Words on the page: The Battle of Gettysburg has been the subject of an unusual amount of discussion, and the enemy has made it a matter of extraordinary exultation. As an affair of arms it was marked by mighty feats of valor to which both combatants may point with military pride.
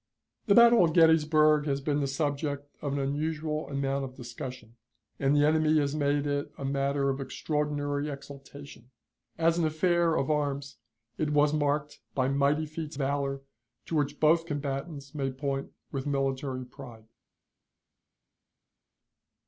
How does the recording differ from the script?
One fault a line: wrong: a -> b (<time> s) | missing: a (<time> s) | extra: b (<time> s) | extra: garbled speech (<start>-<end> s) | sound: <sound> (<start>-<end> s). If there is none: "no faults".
missing: of (13.0 s)